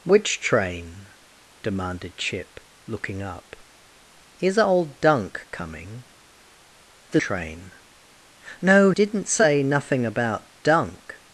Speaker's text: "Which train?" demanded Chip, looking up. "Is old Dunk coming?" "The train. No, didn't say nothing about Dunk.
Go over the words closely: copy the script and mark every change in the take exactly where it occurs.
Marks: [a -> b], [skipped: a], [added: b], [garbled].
"Which train?" demanded Chip, looking up. "Is old Dunk coming?" "The train. No, didn't say nothing about Dunk.